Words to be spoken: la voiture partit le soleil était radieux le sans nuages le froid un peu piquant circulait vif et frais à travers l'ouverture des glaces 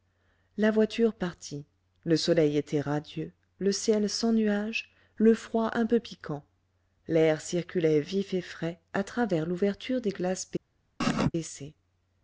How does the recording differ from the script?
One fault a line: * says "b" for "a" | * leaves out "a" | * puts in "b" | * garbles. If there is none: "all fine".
* puts in "ciel"
* puts in "l'air"